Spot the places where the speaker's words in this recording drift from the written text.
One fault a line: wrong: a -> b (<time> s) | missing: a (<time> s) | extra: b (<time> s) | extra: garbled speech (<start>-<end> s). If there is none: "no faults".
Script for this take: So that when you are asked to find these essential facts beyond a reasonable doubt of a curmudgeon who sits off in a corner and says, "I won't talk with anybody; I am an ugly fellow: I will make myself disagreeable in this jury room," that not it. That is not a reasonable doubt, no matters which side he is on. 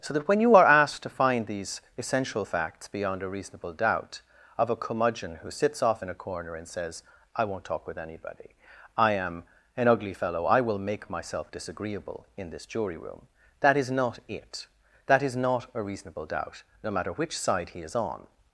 extra: is (13.8 s)
wrong: matters -> matter (16.9 s)